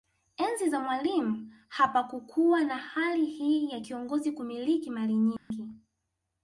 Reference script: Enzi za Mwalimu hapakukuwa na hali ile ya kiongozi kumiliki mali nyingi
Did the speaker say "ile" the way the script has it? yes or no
no